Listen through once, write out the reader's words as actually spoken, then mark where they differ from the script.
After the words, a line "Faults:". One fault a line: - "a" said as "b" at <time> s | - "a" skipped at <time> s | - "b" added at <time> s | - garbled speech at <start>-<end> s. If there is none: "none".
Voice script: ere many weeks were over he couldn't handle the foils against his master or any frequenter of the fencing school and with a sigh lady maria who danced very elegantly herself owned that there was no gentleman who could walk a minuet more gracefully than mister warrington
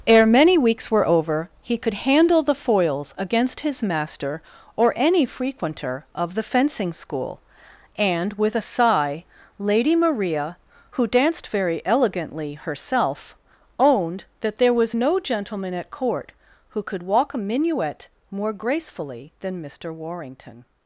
ere many weeks were over he could handle the foils against his master or any frequenter of the fencing school and with a sigh lady maria who danced very elegantly herself owned that there was no gentleman at court who could walk a minuet more gracefully than mister warrington
Faults:
- "couldn't" said as "could" at 1.8 s
- "at court" added at 15.7 s